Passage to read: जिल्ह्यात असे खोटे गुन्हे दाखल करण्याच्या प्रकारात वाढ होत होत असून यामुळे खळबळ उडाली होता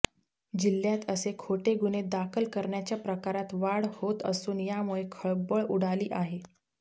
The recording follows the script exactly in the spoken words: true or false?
false